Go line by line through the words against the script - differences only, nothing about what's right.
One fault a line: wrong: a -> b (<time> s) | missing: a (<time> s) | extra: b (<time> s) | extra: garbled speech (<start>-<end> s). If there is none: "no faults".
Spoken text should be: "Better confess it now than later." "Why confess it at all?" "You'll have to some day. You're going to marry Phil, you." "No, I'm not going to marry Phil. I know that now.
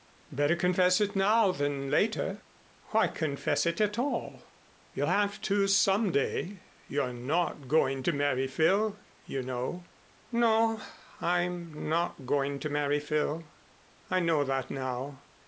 extra: not (7.1 s)
extra: know (9.4 s)